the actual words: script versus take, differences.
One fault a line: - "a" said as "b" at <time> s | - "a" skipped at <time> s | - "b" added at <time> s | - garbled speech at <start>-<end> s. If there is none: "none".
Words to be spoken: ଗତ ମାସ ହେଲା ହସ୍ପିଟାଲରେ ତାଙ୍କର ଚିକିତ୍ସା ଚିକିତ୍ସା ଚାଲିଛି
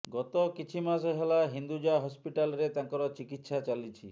- "କିଛି" added at 0.6 s
- "ହିନ୍ଦୁଜା" added at 1.5 s
- "ଚିକିତ୍ସା" skipped at 3.6 s